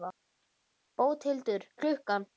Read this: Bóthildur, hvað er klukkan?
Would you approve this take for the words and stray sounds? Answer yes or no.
no